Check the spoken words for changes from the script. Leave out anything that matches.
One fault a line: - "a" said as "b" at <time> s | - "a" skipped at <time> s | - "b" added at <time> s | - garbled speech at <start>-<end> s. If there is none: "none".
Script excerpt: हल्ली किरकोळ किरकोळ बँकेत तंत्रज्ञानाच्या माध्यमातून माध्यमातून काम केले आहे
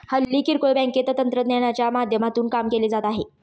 - "किरकोळ" skipped at 0.7 s
- "माध्यमातून" skipped at 2.5 s
- "जात" added at 2.9 s